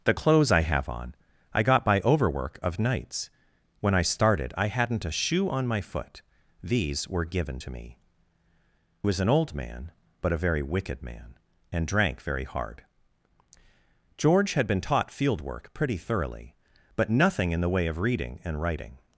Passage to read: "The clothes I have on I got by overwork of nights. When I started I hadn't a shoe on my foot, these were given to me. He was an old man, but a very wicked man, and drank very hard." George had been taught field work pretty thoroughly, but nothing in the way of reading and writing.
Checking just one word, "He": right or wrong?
wrong